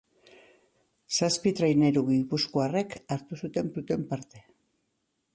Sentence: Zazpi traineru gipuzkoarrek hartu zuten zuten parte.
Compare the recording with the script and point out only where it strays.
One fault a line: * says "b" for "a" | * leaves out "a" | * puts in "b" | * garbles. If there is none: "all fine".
all fine